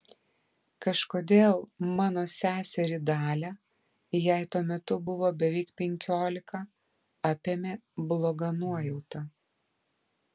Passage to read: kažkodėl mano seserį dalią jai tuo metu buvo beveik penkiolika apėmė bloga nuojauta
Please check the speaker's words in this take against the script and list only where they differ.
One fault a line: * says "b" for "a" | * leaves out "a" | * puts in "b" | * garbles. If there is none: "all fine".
all fine